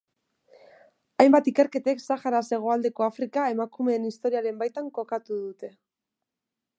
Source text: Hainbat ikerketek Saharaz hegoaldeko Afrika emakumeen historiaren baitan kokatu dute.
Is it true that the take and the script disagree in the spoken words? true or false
false